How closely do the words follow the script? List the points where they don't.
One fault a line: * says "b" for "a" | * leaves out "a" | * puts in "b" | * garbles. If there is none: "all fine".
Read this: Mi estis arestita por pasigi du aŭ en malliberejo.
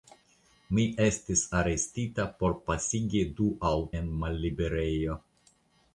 all fine